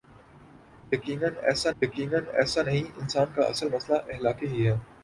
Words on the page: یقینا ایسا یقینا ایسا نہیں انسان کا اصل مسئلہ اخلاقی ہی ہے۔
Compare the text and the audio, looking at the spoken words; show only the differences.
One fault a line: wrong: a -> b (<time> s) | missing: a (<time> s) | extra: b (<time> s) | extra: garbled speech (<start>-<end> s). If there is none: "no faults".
no faults